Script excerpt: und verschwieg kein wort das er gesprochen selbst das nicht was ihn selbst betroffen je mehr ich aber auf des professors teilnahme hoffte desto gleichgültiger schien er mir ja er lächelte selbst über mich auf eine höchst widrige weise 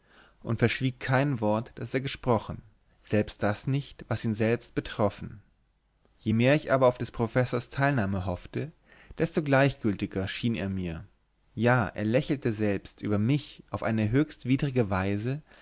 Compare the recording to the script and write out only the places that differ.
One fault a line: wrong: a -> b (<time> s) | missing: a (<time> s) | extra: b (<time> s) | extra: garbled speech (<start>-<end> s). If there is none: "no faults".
no faults